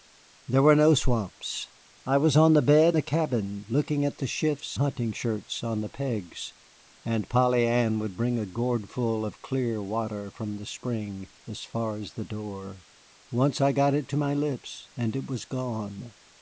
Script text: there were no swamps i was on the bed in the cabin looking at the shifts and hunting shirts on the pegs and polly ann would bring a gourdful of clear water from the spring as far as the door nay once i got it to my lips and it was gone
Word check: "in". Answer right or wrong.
wrong